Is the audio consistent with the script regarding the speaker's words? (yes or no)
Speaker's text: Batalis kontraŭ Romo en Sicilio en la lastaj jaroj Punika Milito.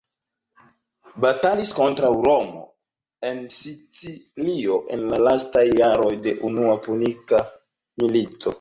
no